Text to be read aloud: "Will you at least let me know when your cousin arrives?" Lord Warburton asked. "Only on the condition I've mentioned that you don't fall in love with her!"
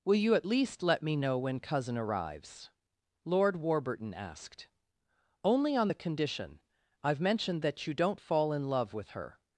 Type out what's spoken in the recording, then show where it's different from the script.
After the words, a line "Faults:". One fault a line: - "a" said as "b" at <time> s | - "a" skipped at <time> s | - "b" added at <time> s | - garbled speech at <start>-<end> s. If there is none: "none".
"Will you at least let me know when cousin arrives?" Lord Warburton asked. "Only on the condition I've mentioned that you don't fall in love with her!"
Faults:
- "your" skipped at 1.6 s